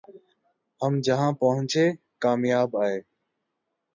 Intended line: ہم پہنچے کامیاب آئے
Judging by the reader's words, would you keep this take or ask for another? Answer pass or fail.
fail